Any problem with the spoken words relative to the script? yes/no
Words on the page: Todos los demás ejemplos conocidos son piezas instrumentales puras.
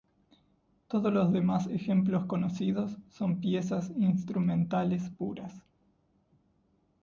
no